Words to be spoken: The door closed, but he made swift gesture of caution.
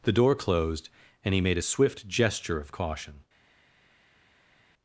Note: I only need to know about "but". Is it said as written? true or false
false